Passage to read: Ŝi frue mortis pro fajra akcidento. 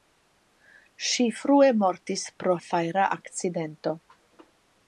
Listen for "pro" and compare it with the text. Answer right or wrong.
right